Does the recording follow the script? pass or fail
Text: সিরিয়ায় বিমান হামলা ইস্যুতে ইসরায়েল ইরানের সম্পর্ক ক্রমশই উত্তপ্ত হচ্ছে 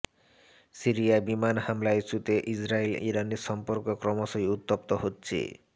pass